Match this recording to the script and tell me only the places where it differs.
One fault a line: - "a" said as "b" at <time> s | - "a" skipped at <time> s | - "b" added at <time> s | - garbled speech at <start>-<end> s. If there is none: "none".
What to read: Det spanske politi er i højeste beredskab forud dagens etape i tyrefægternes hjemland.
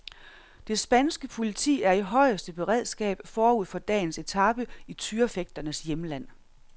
- "for" added at 3.6 s